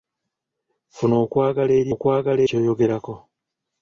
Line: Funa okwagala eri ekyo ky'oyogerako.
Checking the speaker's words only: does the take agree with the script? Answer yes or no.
no